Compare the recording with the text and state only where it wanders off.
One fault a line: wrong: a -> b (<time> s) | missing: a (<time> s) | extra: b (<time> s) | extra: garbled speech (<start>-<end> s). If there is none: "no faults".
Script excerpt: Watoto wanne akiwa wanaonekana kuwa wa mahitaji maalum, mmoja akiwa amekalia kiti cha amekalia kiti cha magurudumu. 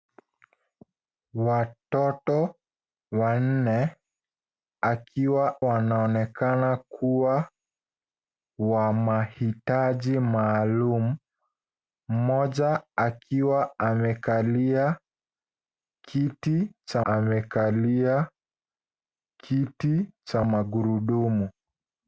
no faults